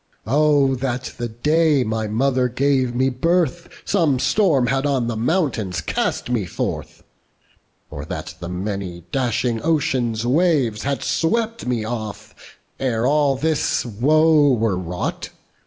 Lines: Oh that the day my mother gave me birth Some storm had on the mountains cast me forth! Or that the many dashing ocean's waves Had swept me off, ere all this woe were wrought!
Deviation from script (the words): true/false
false